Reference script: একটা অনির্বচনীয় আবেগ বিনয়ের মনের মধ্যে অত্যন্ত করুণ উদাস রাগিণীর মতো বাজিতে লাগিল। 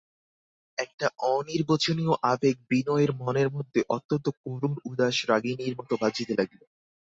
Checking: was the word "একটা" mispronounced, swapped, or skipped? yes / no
no